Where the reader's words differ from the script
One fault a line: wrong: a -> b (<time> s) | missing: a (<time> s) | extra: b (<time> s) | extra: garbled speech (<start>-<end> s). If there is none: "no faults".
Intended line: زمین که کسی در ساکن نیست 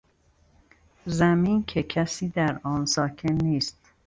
extra: آن (2.6 s)